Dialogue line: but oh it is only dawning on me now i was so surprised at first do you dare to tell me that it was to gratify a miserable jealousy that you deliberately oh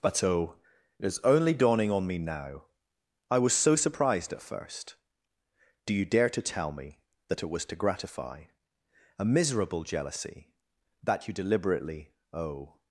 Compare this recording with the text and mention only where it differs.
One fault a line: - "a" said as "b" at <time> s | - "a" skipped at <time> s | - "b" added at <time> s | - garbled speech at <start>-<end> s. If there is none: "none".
none